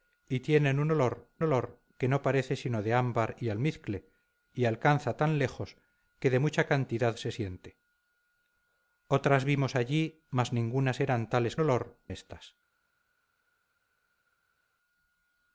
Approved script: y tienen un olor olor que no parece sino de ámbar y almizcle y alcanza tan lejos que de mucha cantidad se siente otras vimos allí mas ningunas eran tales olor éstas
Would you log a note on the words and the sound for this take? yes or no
no